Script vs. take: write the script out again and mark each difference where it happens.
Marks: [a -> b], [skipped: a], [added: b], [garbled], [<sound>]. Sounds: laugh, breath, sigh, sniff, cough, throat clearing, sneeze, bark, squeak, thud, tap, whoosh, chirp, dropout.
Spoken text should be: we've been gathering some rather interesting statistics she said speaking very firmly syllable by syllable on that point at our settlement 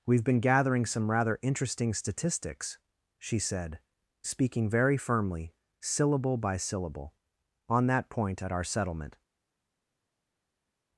we've been gathering some rather interesting statistics she said speaking very firmly syllable by syllable on that point at our settlement